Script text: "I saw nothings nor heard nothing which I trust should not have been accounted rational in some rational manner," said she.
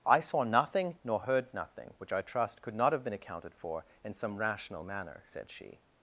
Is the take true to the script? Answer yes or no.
no